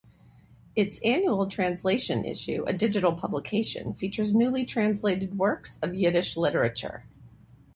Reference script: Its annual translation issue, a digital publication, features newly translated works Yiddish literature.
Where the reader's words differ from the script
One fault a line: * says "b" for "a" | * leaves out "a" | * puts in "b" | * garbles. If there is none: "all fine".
* puts in "of"